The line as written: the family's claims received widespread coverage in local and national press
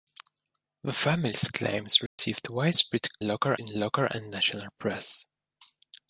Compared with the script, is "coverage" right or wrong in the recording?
wrong